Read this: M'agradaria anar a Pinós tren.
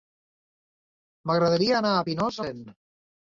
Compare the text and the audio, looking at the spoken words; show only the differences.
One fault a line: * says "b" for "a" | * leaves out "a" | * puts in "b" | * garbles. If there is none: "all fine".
all fine